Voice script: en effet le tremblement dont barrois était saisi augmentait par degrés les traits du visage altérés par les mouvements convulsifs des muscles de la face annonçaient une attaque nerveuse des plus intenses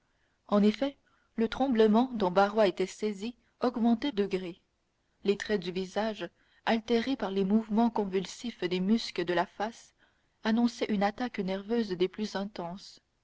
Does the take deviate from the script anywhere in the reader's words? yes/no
yes